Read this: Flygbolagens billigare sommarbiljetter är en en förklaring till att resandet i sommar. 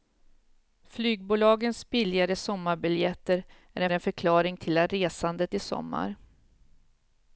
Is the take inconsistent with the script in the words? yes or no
no